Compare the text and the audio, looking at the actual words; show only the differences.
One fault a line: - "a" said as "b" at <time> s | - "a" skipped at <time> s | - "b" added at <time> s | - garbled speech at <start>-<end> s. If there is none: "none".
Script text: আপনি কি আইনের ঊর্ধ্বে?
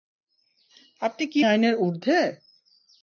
none